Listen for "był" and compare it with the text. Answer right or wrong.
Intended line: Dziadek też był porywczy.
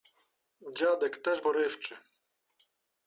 wrong